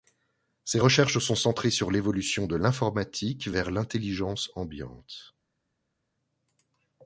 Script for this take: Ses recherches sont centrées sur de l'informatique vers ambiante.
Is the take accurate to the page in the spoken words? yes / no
no